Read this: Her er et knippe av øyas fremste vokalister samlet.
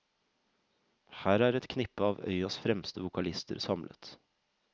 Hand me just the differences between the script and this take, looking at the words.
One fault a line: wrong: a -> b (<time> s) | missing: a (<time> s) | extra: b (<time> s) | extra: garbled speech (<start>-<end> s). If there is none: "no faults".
no faults